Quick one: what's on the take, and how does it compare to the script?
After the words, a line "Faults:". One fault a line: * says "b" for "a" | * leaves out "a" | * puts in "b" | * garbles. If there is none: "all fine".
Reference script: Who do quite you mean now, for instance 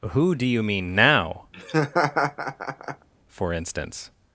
Who do you mean now, for instance
Faults:
* leaves out "quite"